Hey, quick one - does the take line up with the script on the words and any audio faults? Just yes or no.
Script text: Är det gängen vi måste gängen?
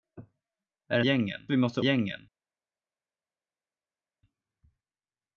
yes